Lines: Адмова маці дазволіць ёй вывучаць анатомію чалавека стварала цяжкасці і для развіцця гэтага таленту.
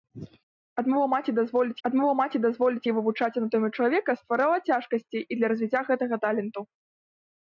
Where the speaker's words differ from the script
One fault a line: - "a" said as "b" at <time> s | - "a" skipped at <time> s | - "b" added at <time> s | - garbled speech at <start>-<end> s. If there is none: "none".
- "адмова маці дазволіць" added at 1.9 s